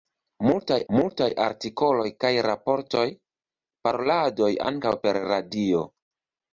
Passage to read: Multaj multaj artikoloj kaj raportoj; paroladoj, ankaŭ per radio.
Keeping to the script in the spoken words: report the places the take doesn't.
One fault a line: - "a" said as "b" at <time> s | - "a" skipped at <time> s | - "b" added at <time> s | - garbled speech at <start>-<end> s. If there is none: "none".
none